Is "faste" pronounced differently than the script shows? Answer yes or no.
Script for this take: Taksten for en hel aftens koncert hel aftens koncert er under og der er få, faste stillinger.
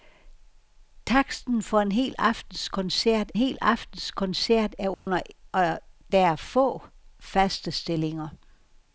no